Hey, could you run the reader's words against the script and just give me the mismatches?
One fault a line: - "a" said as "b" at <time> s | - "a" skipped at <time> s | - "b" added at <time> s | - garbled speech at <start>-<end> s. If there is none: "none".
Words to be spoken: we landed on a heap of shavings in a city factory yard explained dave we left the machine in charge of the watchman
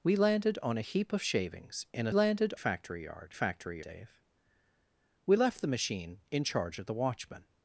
- "city" said as "landed" at 2.1 s
- "explained" said as "factory" at 3.3 s